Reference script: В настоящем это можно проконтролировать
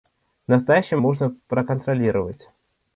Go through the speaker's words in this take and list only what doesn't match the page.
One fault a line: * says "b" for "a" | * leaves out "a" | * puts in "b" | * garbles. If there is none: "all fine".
* leaves out "это"